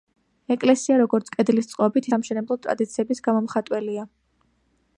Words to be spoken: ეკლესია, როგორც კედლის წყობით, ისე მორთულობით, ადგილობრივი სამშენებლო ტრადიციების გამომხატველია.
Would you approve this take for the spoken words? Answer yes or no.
no